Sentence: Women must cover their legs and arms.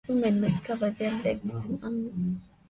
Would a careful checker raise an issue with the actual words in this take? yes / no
no